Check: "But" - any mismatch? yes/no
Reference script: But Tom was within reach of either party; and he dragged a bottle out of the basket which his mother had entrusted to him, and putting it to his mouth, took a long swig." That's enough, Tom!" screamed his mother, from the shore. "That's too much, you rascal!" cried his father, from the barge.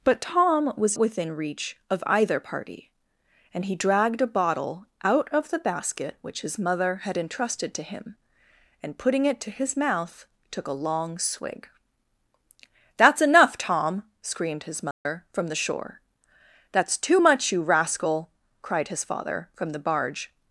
no